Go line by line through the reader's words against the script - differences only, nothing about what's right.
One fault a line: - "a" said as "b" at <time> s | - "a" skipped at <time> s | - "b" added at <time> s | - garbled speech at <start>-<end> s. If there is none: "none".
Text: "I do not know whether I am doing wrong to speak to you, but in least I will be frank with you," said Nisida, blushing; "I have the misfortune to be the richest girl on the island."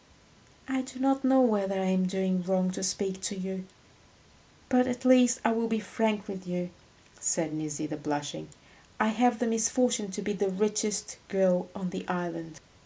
- "in" said as "at" at 4.9 s